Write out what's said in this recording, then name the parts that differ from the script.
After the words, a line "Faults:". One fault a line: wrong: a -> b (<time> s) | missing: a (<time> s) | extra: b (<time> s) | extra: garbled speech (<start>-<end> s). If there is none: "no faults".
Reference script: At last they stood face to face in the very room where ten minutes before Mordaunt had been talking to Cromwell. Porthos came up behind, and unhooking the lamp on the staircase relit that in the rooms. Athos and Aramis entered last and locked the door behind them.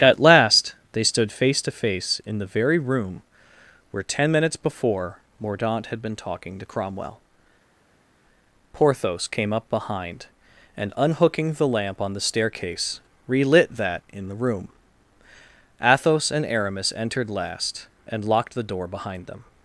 At last they stood face to face in the very room where ten minutes before Mordaunt had been talking to Cromwell. Porthos came up behind, and unhooking the lamp on the staircase relit that in the room. Athos and Aramis entered last and locked the door behind them.
Faults:
wrong: rooms -> room (14.3 s)